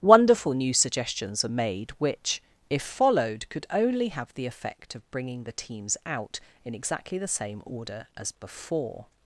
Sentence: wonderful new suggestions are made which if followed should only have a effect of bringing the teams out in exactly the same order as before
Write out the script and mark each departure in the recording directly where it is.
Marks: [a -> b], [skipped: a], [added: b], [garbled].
wonderful new suggestions are made which if followed [should -> could] only have [a -> the] effect of bringing the teams out in exactly the same order as before